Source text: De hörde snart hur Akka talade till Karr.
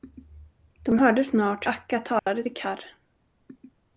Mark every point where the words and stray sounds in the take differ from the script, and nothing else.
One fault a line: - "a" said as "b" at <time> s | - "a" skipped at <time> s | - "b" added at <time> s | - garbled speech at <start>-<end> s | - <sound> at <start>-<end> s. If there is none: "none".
- "hur" skipped at 1.7 s
- dropout at 2.2-2.3 s